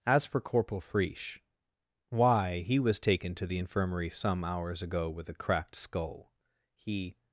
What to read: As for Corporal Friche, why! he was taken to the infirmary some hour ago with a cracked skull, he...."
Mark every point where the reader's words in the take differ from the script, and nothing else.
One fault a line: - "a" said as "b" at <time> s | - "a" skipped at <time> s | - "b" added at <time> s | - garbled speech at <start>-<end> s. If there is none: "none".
- "hour" said as "hours" at 4.4 s